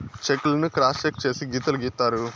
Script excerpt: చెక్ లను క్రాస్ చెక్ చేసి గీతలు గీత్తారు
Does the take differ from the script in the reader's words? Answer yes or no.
no